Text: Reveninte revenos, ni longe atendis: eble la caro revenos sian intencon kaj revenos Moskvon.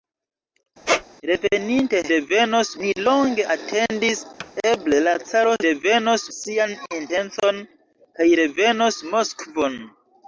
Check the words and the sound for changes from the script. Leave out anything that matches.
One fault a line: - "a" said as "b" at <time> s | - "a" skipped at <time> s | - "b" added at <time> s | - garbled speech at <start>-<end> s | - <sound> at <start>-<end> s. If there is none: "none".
- squeak at 0.9-1.0 s
- thud at 4.4-4.5 s